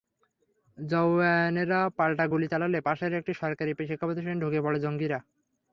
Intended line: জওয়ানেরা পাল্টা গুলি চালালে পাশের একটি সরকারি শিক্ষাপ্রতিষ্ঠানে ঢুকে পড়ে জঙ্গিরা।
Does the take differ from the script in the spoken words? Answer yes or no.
no